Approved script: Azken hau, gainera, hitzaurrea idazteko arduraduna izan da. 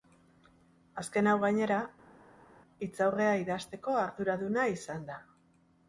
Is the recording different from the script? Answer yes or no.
no